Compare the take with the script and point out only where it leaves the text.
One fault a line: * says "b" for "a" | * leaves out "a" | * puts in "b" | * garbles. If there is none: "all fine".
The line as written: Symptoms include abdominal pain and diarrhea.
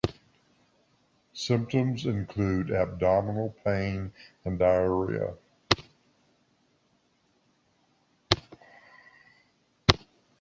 all fine